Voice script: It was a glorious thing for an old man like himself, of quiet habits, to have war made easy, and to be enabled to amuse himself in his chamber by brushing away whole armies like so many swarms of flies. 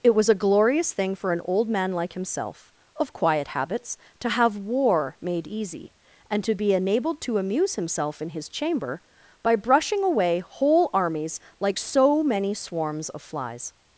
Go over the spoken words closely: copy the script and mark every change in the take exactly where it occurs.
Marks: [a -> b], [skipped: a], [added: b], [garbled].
It was a glorious thing for an old man like himself, of quiet habits, to have war made easy, and to be enabled to amuse himself in his chamber by brushing away whole armies like so many swarms of flies.